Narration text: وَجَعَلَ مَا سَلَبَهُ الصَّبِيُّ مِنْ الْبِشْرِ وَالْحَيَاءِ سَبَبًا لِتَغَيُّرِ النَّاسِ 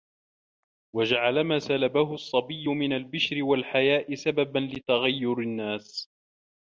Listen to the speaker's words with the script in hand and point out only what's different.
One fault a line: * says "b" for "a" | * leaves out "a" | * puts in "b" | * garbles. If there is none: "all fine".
all fine